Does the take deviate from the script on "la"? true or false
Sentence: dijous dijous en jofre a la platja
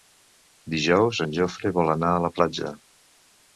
false